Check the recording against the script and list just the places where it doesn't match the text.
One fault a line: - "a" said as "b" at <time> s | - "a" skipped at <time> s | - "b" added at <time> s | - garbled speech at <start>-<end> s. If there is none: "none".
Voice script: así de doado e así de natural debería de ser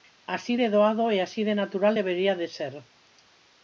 none